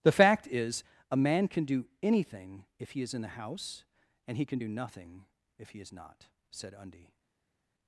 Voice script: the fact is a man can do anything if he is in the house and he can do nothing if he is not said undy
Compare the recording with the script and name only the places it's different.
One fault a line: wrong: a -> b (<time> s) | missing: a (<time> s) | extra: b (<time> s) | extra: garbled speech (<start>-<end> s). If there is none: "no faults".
no faults